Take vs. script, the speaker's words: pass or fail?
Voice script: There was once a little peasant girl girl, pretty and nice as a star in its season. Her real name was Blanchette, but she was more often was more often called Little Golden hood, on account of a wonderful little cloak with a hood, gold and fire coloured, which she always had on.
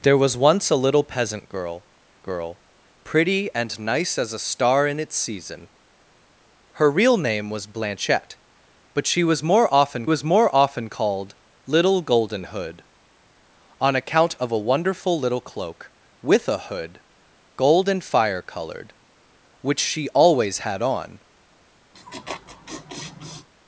pass